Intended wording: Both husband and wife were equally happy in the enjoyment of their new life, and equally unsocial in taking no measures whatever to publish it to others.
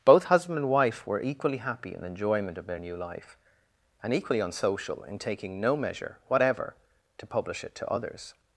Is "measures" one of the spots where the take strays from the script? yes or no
yes